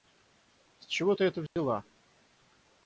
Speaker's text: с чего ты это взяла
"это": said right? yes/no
yes